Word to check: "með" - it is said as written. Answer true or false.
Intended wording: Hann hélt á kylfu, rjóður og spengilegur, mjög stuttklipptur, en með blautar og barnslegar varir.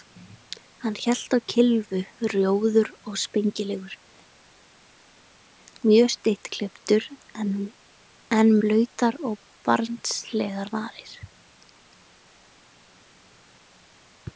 false